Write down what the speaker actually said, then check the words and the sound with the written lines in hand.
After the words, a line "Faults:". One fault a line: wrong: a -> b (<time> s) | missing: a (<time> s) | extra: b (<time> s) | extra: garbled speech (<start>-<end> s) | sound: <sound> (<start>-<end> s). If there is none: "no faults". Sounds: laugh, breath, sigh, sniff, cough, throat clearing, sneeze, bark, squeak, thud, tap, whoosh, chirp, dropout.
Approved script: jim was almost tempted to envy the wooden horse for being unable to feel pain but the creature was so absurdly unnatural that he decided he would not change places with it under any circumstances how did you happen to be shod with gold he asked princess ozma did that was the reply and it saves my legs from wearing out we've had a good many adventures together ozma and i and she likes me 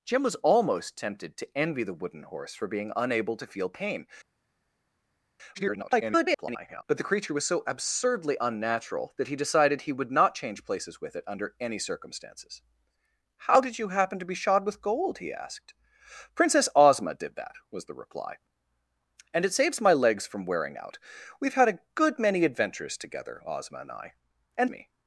jim was almost tempted to envy the wooden horse for being unable to feel pain [garbled] but the creature was so absurdly unnatural that he decided he would not change places with it under any circumstances how did you happen to be shod with gold he asked princess ozma did that was the reply and it saves my legs from wearing out we've had a good many adventures together ozma and i and me
Faults:
extra: garbled speech (5.5-6.8 s)
missing: she likes (24.7 s)